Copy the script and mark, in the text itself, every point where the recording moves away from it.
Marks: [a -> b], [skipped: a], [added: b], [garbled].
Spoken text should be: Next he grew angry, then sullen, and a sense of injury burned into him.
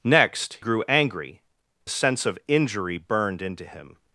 Next [skipped: he] grew angry, [skipped: then sullen, and] a sense of injury burned into him.